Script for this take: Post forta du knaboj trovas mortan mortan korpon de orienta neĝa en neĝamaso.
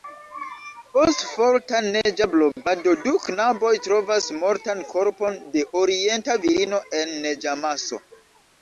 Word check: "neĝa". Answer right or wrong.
wrong